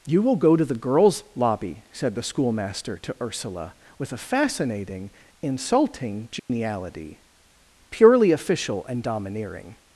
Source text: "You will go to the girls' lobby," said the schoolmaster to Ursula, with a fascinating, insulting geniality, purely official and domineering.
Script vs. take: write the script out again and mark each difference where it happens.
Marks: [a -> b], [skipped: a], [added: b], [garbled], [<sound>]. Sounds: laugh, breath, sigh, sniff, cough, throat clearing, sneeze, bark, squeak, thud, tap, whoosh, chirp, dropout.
"You will go to the girls' lobby," said the schoolmaster to Ursula, with a fascinating, insulting geniality, [dropout] purely official and domineering.